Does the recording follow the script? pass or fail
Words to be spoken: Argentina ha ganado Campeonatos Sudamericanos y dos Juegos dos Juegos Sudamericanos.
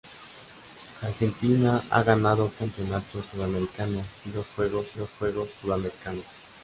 pass